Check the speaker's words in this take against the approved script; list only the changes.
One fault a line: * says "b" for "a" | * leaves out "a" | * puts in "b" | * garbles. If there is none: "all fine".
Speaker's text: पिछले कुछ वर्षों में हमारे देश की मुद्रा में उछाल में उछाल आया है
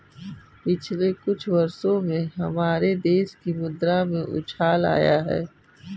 * leaves out "में उछाल"